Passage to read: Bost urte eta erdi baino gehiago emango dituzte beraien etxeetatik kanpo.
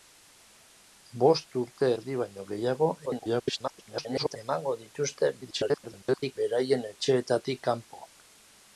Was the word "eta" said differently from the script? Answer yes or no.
yes